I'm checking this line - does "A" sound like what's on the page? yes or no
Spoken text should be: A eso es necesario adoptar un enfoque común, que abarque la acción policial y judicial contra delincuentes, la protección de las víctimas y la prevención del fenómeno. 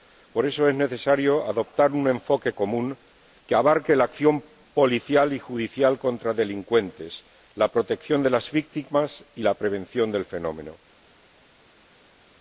no